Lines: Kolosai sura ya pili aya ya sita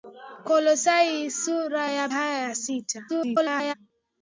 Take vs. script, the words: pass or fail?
fail